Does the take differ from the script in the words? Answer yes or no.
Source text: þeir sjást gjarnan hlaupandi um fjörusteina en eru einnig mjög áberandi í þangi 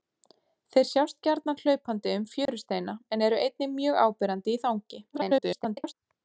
yes